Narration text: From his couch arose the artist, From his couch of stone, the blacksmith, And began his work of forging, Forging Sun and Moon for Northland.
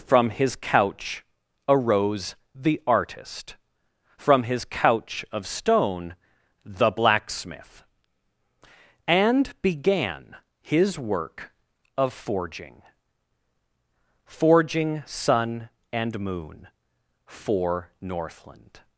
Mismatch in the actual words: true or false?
false